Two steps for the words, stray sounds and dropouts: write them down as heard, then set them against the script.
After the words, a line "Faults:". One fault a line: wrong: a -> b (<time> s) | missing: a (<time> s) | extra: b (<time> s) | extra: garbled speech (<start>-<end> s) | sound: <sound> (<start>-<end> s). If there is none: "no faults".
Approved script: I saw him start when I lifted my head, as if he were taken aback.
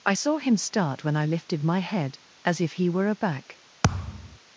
I saw him start when I lifted my head, as if he were aback.
Faults:
missing: taken (3.1 s)
sound: thud (3.8-4.4 s)